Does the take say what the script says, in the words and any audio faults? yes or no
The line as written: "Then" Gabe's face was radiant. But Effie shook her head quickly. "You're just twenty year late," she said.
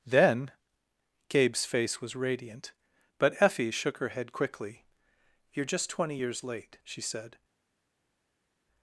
no